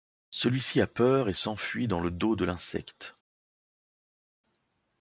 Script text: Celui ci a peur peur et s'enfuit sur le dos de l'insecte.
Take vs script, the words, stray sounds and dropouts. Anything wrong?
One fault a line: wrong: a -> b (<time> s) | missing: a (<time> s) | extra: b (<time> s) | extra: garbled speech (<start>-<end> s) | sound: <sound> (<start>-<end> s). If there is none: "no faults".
missing: peur (1.3 s)
wrong: sur -> dans (1.9 s)